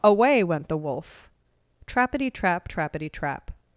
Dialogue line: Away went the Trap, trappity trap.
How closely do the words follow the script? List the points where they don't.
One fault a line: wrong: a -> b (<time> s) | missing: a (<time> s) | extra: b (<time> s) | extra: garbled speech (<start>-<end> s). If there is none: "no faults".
extra: Wolf trappity (0.8 s)